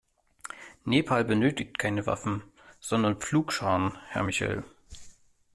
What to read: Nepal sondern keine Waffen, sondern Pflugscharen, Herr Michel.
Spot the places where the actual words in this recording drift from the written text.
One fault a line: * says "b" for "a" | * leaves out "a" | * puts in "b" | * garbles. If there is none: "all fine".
* says "benötigt" for "sondern"